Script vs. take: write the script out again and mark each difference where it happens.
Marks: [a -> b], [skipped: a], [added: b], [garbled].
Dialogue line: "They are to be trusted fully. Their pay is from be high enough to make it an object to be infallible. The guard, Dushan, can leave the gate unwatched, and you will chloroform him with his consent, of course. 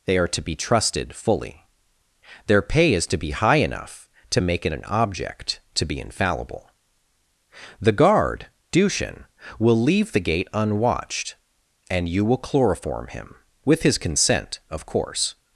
"They are to be trusted fully. Their pay is [from -> to] be high enough to make it an object to be infallible. The guard, Dushan, [can -> will] leave the gate unwatched, and you will chloroform him with his consent, of course.